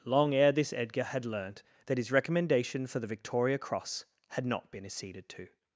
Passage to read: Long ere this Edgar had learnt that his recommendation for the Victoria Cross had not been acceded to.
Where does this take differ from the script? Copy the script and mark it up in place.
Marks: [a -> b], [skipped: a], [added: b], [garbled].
Long ere this Edgar had learnt that his recommendation for the Victoria Cross had not been acceded to.